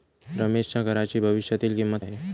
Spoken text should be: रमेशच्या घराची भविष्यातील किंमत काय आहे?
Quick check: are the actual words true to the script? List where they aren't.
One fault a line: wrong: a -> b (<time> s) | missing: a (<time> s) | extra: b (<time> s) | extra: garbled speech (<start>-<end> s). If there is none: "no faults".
missing: काय (2.0 s)